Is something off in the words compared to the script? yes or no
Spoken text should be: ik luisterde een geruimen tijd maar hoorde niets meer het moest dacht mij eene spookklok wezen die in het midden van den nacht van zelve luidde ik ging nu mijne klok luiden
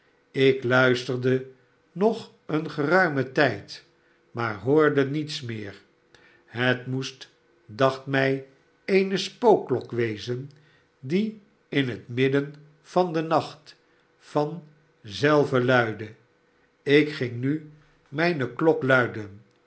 yes